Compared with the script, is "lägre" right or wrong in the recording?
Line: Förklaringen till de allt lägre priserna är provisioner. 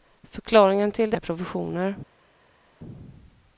wrong